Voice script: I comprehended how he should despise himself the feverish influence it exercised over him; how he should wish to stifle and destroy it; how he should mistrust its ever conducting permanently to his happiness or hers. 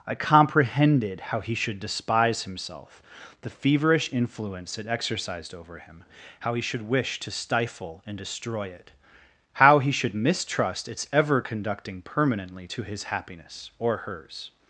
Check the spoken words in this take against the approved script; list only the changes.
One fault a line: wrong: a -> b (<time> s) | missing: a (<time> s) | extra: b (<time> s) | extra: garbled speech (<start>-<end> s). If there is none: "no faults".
no faults